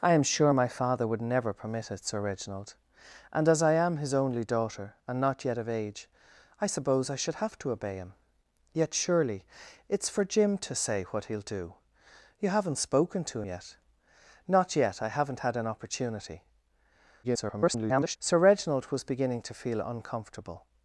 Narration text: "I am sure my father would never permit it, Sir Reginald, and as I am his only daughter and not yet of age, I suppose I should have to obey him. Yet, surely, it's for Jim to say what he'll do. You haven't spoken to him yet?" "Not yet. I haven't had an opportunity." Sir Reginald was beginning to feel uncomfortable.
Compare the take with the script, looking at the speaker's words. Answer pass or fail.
fail